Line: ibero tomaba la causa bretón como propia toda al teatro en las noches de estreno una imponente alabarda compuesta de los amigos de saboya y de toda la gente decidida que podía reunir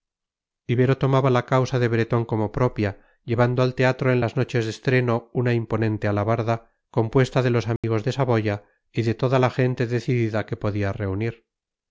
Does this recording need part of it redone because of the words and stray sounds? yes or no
yes